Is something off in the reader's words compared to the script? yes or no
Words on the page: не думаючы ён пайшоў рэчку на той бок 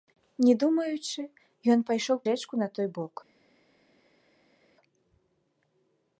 no